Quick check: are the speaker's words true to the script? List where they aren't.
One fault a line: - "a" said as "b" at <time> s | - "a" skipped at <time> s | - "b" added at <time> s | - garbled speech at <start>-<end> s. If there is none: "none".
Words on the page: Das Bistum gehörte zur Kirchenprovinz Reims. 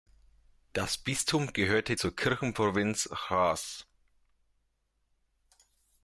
none